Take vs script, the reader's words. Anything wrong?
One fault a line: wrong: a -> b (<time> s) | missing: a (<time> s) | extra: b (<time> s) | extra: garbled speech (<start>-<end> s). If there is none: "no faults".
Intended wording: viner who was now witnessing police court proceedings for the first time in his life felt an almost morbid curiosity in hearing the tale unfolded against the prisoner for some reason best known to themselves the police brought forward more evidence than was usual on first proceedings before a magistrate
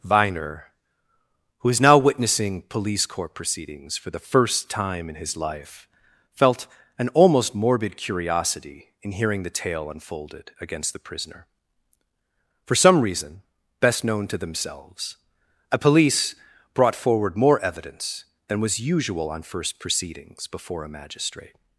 wrong: was -> is (1.7 s)
wrong: the -> a (15.7 s)